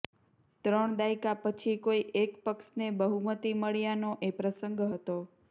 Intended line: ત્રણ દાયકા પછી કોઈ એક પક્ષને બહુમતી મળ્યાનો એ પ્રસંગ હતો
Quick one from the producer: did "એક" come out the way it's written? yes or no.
yes